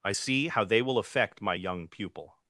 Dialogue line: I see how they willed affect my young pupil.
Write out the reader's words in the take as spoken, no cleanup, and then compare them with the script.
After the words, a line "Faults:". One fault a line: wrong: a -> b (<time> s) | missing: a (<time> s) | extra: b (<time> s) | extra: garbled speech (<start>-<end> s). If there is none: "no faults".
I see how they will affect my young pupil.
Faults:
wrong: willed -> will (0.8 s)